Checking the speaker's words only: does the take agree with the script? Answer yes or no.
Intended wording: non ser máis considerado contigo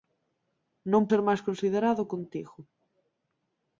yes